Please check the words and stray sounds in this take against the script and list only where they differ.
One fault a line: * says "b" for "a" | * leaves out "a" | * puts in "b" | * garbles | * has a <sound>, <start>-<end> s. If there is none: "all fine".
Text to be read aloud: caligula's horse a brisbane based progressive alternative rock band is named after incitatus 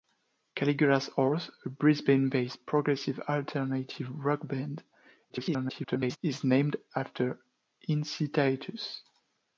* garbles